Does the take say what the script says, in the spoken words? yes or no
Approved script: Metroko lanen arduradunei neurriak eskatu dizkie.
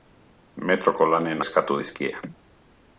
no